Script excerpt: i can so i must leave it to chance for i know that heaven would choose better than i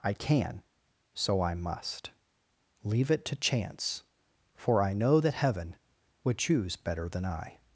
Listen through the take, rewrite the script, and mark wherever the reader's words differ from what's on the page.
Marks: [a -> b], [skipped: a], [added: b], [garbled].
i can so i must leave it to chance for i know that heaven would choose better than i